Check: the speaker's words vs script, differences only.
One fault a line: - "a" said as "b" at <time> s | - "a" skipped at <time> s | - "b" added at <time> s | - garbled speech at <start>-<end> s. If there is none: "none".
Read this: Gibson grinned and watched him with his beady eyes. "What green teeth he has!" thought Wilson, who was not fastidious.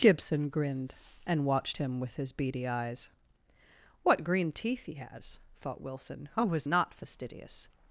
none